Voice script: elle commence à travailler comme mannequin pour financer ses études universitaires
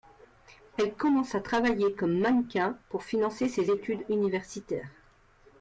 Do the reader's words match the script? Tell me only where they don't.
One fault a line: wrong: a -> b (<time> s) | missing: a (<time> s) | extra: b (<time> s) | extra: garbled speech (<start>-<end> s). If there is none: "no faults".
no faults